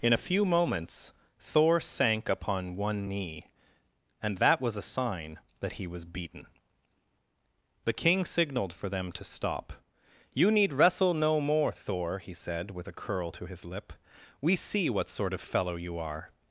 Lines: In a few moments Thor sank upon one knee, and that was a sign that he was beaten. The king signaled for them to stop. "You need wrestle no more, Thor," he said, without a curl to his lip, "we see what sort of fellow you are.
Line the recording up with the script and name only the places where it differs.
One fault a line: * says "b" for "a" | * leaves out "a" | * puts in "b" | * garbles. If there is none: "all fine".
* says "with" for "without"